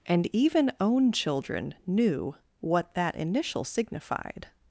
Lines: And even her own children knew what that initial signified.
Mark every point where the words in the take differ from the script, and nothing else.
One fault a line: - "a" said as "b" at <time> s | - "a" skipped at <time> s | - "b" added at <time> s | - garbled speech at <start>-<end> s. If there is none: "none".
- "her" skipped at 0.7 s